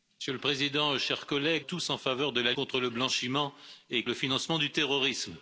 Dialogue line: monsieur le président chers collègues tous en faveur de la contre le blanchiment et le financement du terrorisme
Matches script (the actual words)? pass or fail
pass